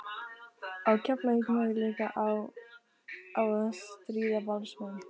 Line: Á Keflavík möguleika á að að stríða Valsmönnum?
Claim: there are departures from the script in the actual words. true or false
true